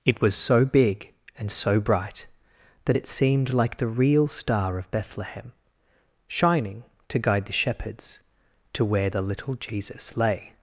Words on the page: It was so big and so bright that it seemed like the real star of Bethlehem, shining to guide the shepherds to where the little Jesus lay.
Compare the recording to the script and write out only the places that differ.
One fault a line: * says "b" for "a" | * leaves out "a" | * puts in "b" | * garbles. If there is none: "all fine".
all fine